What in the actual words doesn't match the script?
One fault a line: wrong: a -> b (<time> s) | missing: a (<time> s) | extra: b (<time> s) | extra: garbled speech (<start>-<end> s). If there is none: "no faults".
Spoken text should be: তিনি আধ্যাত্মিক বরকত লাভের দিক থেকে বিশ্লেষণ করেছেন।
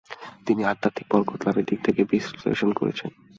no faults